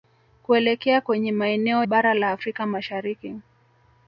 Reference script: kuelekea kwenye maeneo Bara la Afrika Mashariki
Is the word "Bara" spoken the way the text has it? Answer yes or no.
yes